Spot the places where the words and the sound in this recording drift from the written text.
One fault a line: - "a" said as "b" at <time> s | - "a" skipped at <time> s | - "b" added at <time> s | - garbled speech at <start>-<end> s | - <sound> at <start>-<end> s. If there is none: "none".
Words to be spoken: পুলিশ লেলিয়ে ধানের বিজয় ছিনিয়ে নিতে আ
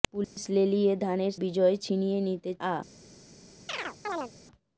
- dropout at 0.2-0.4 s
- chirp at 3.7-4.3 s